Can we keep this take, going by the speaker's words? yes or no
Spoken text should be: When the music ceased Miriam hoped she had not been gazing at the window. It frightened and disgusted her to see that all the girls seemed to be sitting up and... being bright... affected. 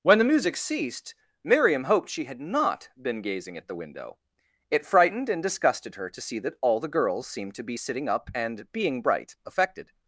yes